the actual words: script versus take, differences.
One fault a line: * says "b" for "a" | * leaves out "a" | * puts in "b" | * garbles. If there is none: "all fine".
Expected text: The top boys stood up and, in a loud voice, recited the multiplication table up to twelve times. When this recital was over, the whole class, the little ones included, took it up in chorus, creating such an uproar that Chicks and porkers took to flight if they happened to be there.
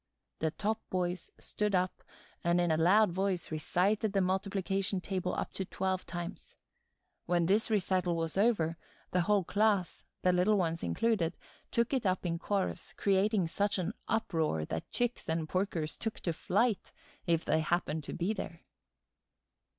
all fine